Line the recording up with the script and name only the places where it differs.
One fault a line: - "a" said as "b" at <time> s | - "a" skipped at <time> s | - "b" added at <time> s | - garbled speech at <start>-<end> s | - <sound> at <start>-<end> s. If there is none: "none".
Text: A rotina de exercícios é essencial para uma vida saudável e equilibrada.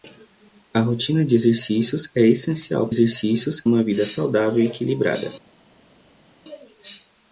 - "para" said as "exercícios" at 2.9 s